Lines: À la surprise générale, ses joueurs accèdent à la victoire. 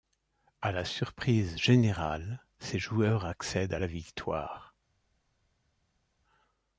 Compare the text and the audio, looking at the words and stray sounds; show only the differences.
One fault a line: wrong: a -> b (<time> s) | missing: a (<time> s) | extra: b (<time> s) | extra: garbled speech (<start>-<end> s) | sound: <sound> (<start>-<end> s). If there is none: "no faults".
no faults